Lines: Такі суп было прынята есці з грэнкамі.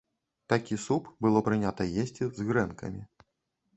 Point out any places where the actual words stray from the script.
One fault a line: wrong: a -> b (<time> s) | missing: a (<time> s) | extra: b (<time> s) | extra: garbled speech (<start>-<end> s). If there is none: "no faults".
no faults